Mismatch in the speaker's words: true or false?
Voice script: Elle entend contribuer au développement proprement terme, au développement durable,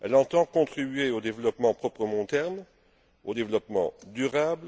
false